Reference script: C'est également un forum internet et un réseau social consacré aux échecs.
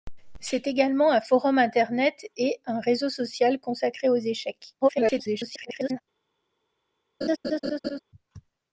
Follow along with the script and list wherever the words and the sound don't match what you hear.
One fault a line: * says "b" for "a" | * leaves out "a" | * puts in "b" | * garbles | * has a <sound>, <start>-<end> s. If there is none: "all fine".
* garbles
* has a laugh, 7.2-8.0 s